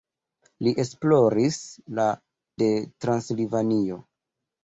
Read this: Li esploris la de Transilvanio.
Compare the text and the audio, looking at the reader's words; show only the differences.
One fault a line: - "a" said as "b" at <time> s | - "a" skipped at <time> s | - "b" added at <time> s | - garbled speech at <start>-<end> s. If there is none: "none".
none